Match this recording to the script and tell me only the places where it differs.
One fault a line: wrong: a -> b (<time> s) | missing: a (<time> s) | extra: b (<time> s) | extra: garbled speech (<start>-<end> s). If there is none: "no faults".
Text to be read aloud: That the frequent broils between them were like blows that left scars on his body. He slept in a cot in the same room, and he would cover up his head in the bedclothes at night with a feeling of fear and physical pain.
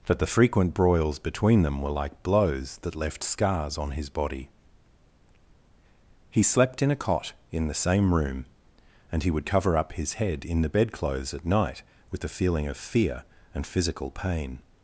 no faults